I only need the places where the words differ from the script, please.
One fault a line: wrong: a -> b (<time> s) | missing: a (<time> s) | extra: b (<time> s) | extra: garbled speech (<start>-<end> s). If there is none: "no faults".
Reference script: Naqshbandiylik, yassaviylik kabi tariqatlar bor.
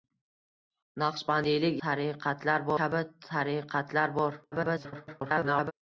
wrong: yassaviylik -> tariqatlar (1.8 s)
extra: garbled speech (4.5-5.7 s)